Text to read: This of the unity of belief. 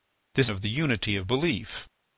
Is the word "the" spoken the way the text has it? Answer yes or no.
yes